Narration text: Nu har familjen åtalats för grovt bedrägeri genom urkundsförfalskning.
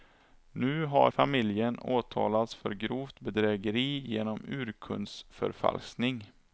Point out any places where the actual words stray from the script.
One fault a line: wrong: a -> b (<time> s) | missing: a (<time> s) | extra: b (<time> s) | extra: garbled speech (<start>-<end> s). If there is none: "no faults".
no faults